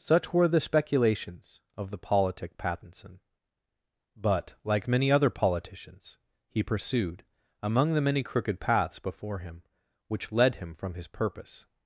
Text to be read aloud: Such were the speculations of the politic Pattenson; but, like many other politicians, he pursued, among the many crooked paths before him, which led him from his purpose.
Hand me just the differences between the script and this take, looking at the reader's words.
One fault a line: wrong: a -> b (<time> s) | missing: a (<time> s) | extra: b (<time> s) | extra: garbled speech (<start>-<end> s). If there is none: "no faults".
no faults